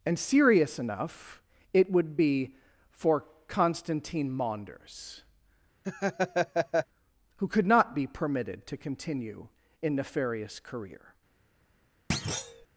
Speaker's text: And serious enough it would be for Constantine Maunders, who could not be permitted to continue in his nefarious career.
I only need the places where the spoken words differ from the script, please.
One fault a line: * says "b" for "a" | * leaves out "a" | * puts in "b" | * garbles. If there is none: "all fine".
* leaves out "his"